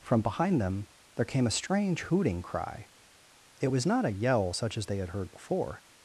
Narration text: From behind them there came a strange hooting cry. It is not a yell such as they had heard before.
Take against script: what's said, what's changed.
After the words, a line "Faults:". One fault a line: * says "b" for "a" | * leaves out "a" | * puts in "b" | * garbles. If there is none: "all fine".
From behind them there came a strange hooting cry. It was not a yell such as they had heard before.
Faults:
* says "was" for "is"